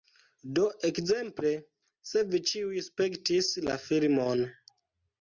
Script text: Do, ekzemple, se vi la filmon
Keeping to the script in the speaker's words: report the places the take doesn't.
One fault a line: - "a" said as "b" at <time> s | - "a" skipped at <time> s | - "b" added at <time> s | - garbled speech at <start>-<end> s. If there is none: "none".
- "ĉiuj spektis" added at 2.5 s